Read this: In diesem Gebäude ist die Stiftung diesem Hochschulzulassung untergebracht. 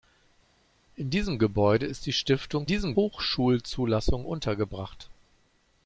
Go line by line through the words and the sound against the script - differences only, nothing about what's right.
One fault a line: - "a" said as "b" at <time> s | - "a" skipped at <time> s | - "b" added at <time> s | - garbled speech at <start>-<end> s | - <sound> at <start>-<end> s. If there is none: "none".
none